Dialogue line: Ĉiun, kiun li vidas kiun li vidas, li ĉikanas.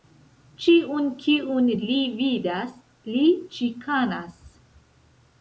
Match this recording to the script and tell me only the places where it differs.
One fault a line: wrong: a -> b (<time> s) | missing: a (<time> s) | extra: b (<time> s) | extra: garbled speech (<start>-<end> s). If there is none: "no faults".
missing: kiun li vidas (2.8 s)